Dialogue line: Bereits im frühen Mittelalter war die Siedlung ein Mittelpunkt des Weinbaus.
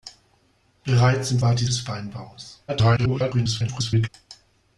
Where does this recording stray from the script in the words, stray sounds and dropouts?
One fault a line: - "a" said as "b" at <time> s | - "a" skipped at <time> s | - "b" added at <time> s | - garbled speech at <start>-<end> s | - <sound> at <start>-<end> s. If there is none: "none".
- "frühen Mittelalter" skipped at 1.4 s
- "Siedlung ein Mittelpunkt" skipped at 1.6 s
- garbled speech at 2.7-4.1 s